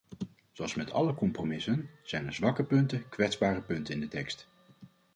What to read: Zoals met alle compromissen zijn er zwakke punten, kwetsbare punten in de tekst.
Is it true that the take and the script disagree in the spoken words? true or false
false